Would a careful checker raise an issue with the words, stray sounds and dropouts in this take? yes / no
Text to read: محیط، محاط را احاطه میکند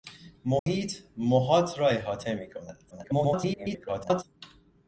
yes